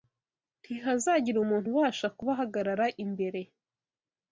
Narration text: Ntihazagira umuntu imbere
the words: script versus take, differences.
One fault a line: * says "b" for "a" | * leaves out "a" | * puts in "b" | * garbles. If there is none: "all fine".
* puts in "ubasha kubahagarara"